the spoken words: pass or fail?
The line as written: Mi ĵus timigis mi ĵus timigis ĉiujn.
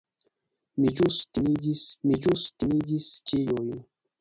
pass